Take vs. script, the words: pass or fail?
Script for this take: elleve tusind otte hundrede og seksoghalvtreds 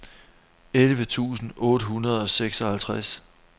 pass